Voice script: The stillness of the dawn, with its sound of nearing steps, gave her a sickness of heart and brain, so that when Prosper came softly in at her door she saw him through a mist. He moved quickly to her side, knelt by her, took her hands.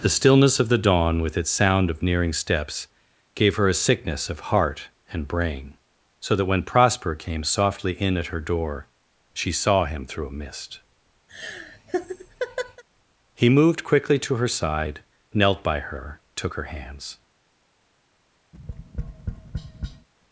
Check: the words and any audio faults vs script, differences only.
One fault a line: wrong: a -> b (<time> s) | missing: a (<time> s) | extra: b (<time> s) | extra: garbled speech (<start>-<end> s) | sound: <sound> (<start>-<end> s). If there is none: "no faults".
sound: laugh (11.3-12.8 s)
sound: tap (18.5-20.1 s)